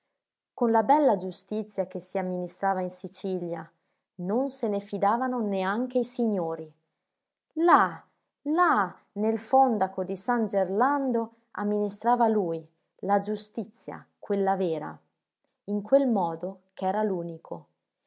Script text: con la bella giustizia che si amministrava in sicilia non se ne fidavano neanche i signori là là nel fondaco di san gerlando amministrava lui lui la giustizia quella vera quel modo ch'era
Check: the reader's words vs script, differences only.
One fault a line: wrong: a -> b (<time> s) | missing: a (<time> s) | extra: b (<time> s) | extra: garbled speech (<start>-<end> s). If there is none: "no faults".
missing: lui (12.6 s)
extra: in (15.6 s)